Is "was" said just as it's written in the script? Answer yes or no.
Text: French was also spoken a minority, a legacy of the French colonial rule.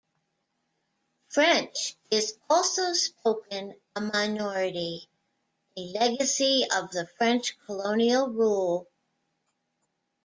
no